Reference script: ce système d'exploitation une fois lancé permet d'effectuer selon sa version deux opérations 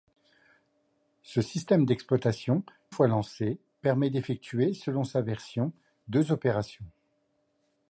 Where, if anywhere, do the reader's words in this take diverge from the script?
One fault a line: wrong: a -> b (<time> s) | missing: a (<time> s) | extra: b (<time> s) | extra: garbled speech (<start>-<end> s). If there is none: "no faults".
missing: une (2.6 s)